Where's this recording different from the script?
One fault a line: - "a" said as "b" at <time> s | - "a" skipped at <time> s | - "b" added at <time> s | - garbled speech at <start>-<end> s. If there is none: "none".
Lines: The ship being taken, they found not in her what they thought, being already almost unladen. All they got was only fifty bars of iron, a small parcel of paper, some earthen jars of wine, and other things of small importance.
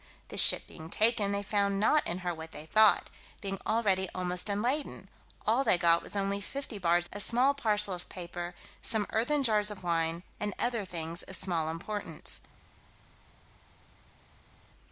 - "of iron" skipped at 7.1 s